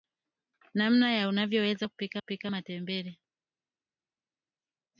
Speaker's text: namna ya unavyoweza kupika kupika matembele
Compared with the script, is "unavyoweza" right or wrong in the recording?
right